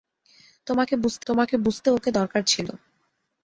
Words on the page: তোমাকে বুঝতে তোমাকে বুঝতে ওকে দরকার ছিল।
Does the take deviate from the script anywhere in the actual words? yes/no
no